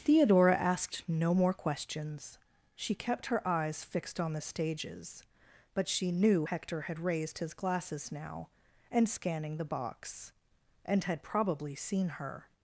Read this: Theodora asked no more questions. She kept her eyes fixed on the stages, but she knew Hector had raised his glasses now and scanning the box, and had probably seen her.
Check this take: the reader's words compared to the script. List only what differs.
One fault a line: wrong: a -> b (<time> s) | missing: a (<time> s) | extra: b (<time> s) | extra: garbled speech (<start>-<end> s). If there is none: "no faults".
no faults